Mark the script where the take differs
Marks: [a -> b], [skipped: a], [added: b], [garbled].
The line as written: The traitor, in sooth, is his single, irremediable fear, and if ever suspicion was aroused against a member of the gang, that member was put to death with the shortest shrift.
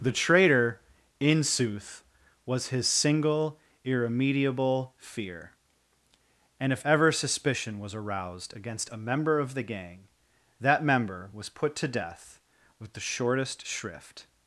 The traitor, in sooth, [is -> was] his single, irremediable fear, and if ever suspicion was aroused against a member of the gang, that member was put to death with the shortest shrift.